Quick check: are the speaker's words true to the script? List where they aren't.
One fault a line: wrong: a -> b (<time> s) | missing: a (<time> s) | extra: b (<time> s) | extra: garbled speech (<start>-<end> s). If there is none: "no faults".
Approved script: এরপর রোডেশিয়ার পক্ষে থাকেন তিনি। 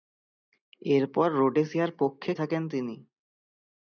no faults